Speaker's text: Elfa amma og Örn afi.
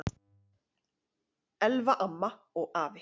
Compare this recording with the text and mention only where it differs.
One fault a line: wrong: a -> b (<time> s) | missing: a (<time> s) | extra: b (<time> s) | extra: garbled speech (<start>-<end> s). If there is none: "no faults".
missing: Örn (2.7 s)